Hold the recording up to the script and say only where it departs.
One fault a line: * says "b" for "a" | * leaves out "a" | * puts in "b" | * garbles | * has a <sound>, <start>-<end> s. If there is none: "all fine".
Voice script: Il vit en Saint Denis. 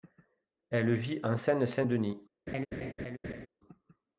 * says "Elle" for "Il"
* puts in "Seine"
* has a laugh, 2.5-3.5 s